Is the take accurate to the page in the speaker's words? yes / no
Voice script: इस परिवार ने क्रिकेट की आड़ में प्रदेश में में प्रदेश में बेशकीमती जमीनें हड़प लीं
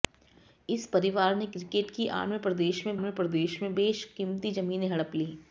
yes